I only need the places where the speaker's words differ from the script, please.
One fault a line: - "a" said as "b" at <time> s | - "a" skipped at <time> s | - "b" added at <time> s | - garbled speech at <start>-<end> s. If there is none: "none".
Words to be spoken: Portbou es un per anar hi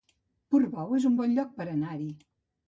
- "bon lloc" added at 1.2 s